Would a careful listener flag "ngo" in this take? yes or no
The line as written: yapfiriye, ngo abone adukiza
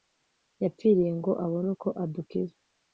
no